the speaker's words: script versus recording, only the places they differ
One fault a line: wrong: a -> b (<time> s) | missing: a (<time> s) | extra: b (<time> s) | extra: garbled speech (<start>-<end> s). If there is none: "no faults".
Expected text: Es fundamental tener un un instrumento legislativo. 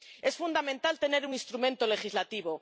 missing: un (1.4 s)